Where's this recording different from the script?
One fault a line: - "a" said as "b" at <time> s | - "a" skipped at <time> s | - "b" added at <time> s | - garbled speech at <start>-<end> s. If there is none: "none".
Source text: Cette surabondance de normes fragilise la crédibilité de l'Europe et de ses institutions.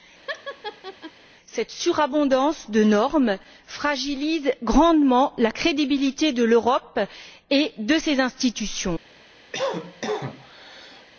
- "grandement" added at 4.6 s